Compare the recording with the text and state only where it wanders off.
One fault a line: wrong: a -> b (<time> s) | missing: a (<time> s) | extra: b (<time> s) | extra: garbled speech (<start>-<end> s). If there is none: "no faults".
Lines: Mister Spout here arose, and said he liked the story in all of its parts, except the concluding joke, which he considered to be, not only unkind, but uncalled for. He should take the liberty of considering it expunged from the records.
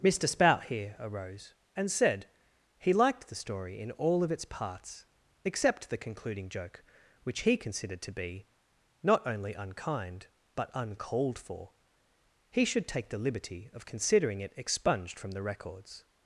no faults